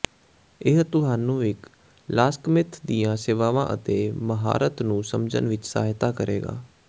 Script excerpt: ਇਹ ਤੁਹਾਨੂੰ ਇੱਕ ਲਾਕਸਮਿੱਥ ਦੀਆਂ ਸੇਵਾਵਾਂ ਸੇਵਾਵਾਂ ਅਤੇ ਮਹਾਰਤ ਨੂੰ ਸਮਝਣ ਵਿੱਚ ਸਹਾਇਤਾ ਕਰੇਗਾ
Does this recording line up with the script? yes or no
no